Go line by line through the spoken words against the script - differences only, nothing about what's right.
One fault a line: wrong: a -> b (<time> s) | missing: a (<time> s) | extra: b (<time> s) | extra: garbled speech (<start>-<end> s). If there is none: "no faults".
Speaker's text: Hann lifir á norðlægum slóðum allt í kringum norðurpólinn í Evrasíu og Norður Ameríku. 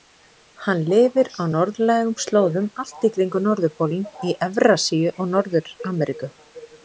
no faults